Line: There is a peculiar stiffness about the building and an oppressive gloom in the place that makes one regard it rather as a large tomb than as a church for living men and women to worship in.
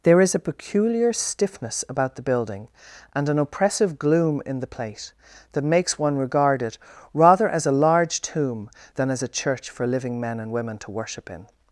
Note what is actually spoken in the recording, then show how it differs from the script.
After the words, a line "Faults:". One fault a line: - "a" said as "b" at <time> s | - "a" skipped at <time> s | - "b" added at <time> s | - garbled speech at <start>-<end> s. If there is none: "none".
There is a peculiar stiffness about the building and an oppressive gloom in the plate that makes one regard it rather as a large tomb than as a church for living men and women to worship in.
Faults:
- "place" said as "plate" at 4.7 s